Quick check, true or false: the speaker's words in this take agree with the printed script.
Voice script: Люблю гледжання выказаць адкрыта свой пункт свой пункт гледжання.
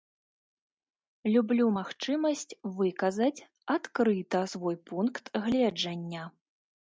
false